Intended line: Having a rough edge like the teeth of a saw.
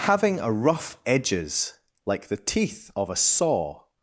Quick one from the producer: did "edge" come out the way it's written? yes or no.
no